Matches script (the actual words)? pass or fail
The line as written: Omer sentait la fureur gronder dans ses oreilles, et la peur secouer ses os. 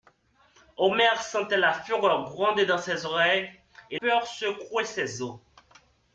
fail